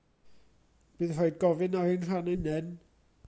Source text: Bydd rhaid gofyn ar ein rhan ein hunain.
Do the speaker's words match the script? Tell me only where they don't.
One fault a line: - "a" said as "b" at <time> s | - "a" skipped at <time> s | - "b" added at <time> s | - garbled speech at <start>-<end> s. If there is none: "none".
- "ein" skipped at 2.3 s